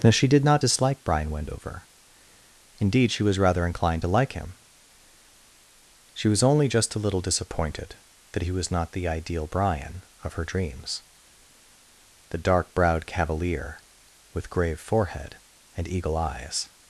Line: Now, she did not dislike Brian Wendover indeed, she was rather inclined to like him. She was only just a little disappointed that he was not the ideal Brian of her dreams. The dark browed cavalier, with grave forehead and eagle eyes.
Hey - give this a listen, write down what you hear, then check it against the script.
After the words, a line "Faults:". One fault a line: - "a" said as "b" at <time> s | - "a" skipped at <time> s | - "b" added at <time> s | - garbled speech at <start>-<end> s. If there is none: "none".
Now, she did not dislike Brian Wendover indeed, she was rather inclined to like him. She was only just a little disappointed that he was not the ideal Brian of her dreams. The dark browed cavalier, with grave forehead and eagle eyes.
Faults:
none